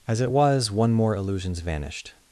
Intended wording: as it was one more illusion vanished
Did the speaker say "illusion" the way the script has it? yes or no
no